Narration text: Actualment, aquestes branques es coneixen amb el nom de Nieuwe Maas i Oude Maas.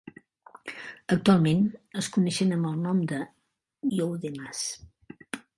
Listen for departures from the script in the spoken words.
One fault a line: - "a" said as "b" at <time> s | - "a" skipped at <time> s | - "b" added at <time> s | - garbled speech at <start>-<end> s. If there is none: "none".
- "aquestes branques" skipped at 1.6 s
- "Nieuwe Maas" skipped at 3.2 s